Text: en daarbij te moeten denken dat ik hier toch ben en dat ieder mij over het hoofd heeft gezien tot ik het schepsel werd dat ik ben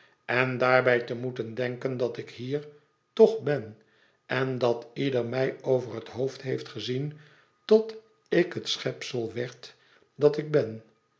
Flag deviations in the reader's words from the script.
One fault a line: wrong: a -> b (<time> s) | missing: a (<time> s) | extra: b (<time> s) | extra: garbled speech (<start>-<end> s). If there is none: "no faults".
no faults